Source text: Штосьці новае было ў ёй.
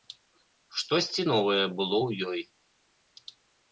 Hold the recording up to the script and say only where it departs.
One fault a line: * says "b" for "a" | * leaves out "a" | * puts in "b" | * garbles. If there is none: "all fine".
all fine